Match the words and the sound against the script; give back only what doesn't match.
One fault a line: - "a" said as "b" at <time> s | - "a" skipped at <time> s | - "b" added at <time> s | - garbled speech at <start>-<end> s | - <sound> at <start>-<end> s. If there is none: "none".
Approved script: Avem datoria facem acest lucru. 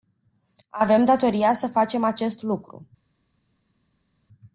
- "să" added at 1.5 s